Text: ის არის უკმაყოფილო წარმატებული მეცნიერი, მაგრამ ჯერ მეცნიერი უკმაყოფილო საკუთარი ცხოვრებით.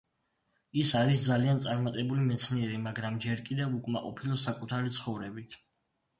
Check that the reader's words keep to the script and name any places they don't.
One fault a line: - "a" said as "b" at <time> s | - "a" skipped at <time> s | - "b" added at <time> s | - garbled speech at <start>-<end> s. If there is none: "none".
- "უკმაყოფილო" said as "ძალიან" at 1.3 s
- "მეცნიერი" said as "კიდევ" at 3.5 s